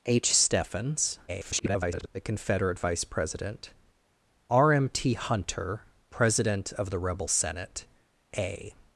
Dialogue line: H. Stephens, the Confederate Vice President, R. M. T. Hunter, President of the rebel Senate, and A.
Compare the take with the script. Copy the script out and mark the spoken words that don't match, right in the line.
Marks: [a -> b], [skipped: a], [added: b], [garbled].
H. Stephens, [garbled] the Confederate Vice President, R. M. T. Hunter, President of the rebel Senate, [skipped: and] A.